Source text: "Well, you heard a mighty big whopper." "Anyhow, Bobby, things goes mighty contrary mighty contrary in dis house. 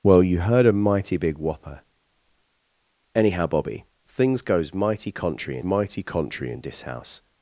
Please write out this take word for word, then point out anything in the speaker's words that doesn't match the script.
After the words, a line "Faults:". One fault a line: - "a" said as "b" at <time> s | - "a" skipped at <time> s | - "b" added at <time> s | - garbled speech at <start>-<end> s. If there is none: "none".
"Well, you heard a mighty big whopper." "Anyhow, Bobby, things goes mighty contrary mighty contrary in dis house.
Faults:
none